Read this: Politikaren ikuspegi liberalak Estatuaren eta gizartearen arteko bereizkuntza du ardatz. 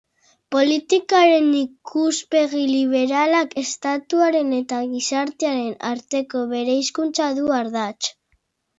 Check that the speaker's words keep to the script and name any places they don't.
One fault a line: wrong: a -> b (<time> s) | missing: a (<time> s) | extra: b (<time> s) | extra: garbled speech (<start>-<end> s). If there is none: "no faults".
no faults